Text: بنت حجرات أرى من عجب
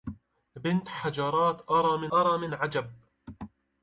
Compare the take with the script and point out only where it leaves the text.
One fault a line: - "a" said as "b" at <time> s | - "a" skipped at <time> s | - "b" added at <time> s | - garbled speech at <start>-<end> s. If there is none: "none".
- "أرى" added at 2.1 s